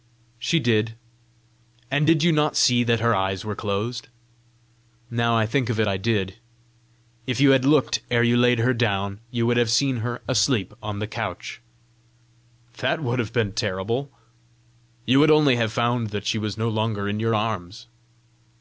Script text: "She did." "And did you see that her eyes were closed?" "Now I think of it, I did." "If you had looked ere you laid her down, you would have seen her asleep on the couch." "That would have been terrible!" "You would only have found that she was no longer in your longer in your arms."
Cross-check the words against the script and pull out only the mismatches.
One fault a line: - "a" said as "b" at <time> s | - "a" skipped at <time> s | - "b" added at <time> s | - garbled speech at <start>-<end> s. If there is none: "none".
- "not" added at 2.3 s
- "longer in your" skipped at 17.4 s